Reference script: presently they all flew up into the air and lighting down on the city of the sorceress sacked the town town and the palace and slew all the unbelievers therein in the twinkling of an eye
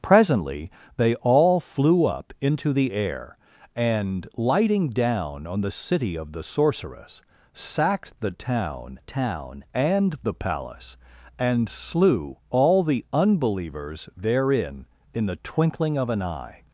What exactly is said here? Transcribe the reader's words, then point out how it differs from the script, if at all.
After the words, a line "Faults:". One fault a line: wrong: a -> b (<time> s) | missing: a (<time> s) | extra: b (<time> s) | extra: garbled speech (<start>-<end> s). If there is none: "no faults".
presently they all flew up into the air and lighting down on the city of the sorceress sacked the town town and the palace and slew all the unbelievers therein in the twinkling of an eye
Faults:
no faults